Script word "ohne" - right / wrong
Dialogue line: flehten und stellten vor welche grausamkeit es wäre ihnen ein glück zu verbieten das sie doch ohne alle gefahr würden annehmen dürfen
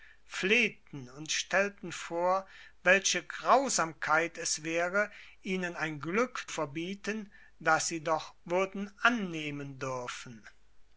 wrong